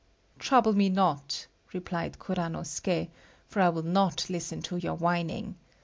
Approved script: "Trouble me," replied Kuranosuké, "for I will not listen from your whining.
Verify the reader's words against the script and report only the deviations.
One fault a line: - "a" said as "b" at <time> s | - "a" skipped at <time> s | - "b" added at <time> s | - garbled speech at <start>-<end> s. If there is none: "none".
- "not" added at 0.9 s
- "from" said as "to" at 4.6 s